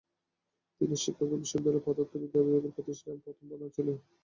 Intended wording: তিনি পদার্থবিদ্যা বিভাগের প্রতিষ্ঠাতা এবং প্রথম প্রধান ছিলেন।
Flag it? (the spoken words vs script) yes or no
yes